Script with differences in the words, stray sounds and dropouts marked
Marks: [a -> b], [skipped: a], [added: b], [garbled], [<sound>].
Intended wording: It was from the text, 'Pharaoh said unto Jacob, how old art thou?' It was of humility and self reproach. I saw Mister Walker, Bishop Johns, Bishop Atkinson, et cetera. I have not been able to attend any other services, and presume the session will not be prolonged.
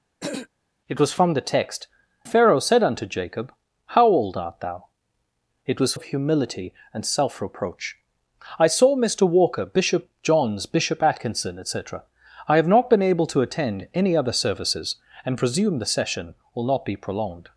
[throat clearing] It was from the text, 'Pharaoh said unto Jacob, how old art thou?' It was of humility and self reproach. I saw Mister Walker, Bishop Johns, Bishop Atkinson, et cetera. I have not been able to attend any other services, and presume the session will not be prolonged.